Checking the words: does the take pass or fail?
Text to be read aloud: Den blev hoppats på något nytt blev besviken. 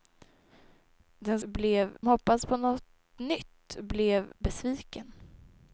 pass